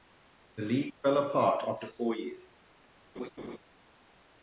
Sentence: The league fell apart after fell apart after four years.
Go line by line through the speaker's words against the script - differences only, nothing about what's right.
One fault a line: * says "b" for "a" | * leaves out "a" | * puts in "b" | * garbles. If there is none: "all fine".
* leaves out "fell apart after"